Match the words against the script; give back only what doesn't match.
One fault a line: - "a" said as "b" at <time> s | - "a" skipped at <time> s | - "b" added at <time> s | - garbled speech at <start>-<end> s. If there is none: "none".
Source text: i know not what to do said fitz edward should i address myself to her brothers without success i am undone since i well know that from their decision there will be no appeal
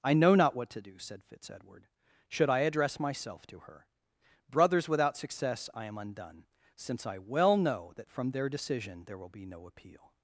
none